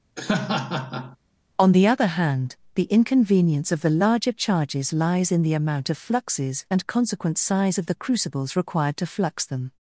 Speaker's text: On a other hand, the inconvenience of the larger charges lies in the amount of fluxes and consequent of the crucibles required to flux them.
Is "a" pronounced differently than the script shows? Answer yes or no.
yes